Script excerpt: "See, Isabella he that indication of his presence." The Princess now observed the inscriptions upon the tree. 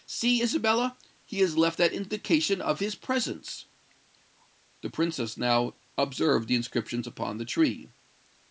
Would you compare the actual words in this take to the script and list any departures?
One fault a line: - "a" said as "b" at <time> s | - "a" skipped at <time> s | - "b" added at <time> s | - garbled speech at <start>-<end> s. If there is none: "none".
- "has left" added at 1.4 s